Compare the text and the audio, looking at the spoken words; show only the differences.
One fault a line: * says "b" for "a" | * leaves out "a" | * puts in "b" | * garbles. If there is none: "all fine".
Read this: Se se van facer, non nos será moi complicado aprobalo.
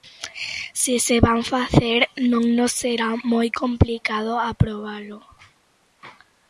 all fine